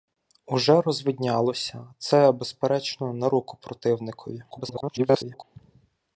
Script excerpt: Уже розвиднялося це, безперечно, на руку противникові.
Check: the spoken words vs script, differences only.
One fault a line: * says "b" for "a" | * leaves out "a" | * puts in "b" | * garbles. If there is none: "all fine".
* garbles